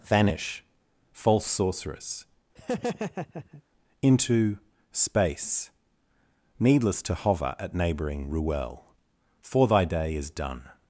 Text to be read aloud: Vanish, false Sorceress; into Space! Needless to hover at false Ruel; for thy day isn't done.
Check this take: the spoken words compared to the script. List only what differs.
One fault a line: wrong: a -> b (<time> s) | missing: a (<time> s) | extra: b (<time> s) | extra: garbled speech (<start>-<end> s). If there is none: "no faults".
wrong: false -> neighbouring (7.7 s)
wrong: isn't -> is (10.1 s)